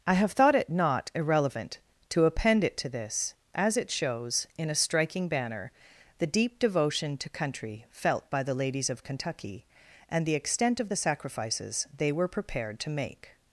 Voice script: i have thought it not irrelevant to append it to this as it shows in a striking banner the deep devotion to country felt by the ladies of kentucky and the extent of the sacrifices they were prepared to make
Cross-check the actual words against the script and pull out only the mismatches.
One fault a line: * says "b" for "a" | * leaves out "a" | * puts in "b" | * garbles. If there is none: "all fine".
all fine